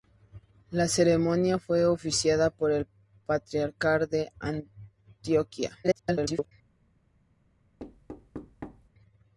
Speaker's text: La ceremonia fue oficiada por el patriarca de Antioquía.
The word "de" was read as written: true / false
true